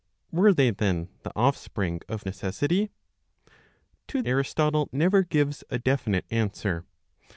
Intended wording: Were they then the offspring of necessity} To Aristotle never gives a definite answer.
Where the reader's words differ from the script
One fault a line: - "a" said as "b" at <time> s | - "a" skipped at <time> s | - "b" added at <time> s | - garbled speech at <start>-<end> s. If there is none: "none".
none